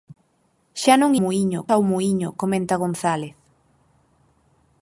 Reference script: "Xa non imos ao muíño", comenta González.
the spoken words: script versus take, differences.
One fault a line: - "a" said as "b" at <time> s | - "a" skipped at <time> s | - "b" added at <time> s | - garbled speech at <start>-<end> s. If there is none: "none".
- "imos" said as "muíño" at 1.2 s